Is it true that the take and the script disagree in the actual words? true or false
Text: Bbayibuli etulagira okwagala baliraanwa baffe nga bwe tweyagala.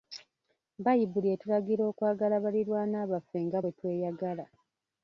false